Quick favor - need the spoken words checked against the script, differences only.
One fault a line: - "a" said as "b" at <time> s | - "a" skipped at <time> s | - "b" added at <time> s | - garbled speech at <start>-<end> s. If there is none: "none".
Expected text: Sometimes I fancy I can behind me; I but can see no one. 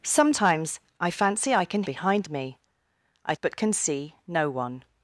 none